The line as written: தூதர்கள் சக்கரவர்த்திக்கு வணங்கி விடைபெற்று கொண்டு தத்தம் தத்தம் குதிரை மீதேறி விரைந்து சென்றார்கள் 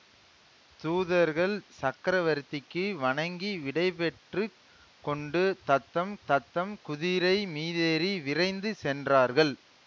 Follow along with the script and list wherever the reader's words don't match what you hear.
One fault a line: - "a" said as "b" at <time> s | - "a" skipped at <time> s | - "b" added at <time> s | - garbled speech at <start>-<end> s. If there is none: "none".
none